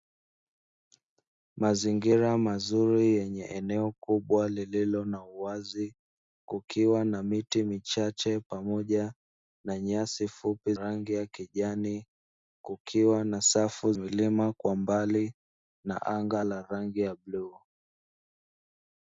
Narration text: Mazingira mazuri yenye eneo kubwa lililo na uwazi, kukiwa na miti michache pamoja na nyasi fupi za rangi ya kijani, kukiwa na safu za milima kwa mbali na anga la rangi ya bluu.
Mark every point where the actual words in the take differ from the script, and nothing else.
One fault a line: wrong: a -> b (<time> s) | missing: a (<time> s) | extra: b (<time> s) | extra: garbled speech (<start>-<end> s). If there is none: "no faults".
missing: za (10.7 s)
missing: za (13.9 s)